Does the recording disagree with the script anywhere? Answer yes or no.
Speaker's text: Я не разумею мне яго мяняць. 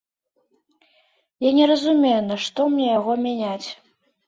yes